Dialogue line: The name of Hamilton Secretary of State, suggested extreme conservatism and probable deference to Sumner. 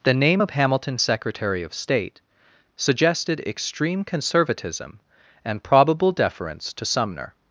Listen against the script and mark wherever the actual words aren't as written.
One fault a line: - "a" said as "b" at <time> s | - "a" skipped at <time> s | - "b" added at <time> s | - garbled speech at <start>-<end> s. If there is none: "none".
none